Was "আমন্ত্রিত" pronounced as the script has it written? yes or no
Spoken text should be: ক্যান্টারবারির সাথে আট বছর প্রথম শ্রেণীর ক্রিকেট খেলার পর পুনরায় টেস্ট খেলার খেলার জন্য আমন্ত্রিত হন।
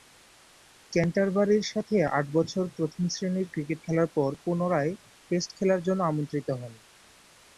yes